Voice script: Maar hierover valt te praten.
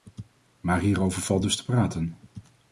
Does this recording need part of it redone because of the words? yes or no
yes